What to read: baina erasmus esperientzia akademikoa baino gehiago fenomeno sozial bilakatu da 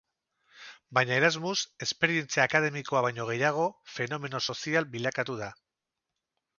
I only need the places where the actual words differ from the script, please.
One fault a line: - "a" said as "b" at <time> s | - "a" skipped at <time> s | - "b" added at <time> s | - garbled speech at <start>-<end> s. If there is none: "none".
none